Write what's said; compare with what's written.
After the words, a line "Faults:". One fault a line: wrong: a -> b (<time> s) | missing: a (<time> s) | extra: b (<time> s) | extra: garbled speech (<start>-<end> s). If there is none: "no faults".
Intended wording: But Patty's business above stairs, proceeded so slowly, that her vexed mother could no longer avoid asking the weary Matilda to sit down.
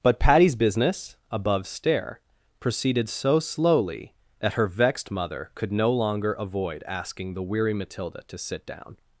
But Patty's business above stair, proceeded so slowly, that her vexed mother could no longer avoid asking the weary Matilda to sit down.
Faults:
wrong: stairs -> stair (1.7 s)